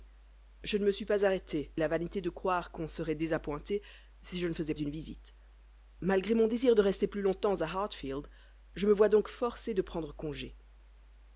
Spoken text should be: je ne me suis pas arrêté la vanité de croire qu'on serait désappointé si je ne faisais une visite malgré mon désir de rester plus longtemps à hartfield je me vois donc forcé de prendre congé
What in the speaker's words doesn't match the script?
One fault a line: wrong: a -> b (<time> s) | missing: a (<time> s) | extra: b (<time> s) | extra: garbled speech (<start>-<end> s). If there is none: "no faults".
no faults